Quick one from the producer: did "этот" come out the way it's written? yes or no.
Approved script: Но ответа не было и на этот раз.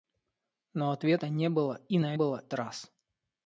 no